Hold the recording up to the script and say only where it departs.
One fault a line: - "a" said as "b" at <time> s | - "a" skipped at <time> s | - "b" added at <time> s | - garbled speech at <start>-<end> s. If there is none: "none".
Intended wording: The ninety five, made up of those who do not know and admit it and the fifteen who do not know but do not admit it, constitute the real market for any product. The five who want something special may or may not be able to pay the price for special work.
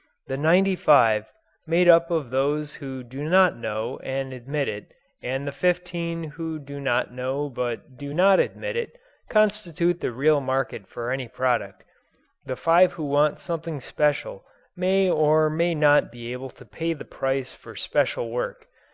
none